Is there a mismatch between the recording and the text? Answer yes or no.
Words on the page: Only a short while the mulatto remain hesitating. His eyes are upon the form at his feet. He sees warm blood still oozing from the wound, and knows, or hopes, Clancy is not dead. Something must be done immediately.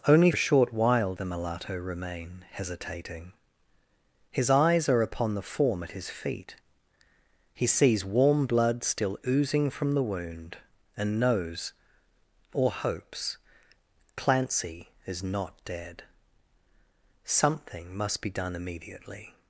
no